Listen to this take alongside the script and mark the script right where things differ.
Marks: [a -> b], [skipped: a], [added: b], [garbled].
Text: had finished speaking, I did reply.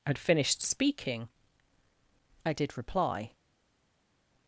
had finished speaking, I did reply.